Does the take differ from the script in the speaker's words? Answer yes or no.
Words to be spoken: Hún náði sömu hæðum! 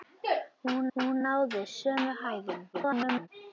yes